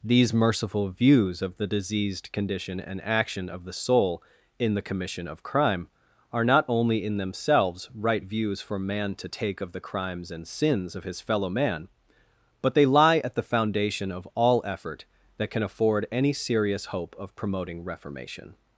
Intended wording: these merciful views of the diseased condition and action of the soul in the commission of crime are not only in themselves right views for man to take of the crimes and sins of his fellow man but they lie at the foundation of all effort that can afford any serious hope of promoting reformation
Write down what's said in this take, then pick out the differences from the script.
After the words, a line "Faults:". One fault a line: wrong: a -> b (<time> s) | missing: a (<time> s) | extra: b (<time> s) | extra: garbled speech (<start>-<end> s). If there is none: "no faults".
these merciful views of the diseased condition and action of the soul in the commission of crime are not only in themselves right views for man to take of the crimes and sins of his fellow man but they lie at the foundation of all effort that can afford any serious hope of promoting reformation
Faults:
no faults